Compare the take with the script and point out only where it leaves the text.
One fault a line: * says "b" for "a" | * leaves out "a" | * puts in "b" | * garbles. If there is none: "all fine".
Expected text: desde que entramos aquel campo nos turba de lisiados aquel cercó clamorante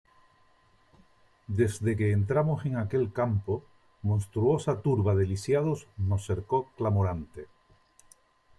* puts in "en"
* says "monstruosa" for "nos"
* says "nos" for "aquel"